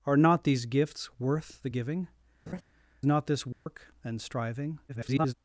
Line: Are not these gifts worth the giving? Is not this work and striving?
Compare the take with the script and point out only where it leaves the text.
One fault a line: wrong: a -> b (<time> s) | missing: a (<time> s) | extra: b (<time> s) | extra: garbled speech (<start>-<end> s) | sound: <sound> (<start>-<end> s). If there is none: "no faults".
missing: Is (2.1 s)
sound: laugh (2.5-2.6 s)
sound: dropout (3.5-3.7 s)
extra: garbled speech (4.9-5.3 s)